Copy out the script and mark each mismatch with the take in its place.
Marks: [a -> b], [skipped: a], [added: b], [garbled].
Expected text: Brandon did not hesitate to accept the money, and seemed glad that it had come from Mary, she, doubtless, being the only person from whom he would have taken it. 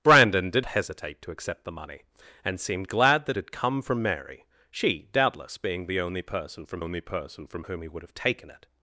Brandon did [skipped: not] hesitate to accept the money, and seemed glad that [skipped: it] had come from Mary, she, doubtless, being the only person from [added: only person from] whom he would have taken it.